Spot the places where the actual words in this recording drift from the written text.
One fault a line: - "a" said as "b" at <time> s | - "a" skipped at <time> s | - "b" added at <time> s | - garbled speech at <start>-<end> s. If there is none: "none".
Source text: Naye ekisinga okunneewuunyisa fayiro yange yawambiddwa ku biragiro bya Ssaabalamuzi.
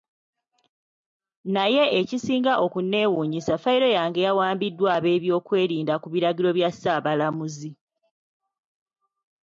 - "ab'ebyokwerinda" added at 5.0 s